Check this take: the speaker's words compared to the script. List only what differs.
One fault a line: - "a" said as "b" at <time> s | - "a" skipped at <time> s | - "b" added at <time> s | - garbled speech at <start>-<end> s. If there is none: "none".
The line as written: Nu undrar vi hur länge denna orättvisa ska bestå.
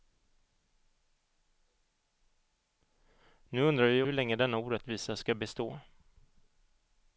none